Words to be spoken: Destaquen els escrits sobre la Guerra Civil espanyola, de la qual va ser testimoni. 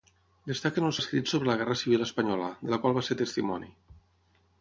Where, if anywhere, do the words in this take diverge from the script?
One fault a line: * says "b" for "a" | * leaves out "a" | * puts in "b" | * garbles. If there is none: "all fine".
all fine